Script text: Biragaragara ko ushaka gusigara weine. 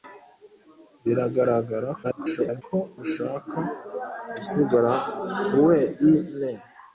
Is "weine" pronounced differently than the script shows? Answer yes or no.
no